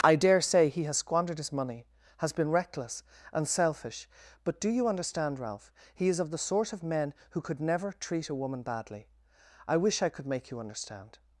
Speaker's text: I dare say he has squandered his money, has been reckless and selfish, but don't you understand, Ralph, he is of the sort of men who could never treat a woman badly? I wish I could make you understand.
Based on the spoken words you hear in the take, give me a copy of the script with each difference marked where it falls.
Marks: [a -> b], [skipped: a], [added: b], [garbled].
I dare say he has squandered his money, has been reckless and selfish, but [don't -> do] you understand, Ralph, he is of the sort of men who could never treat a woman badly? I wish I could make you understand.